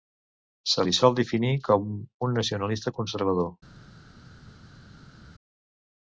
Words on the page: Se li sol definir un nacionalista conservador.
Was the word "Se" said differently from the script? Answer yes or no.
no